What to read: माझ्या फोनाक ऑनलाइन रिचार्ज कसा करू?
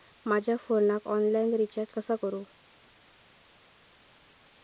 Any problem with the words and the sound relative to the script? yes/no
no